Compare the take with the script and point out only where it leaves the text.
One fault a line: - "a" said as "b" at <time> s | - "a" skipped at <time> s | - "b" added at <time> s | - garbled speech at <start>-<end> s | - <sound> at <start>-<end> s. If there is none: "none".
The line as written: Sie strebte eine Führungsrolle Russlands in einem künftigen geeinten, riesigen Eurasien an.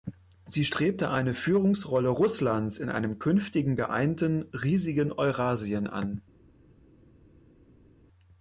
none